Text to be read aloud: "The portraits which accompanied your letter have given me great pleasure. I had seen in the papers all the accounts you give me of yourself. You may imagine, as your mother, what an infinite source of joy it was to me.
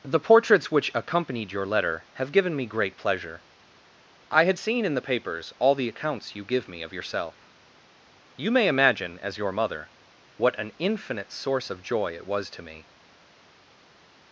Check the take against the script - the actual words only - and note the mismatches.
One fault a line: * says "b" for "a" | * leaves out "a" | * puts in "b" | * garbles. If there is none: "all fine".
all fine